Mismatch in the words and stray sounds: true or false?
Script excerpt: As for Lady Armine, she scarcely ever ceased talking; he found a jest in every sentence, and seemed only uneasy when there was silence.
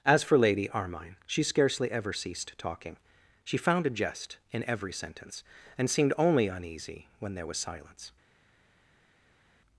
true